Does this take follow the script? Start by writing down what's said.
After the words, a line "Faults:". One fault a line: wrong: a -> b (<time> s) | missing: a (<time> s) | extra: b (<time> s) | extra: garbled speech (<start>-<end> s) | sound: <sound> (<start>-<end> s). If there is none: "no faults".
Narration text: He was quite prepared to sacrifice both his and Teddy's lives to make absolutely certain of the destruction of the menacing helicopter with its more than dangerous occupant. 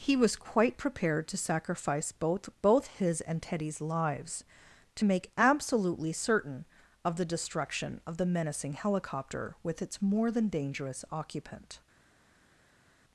He was quite prepared to sacrifice both both his and Teddy's lives to make absolutely certain of the destruction of the menacing helicopter with its more than dangerous occupant.
Faults:
extra: both (2.6 s)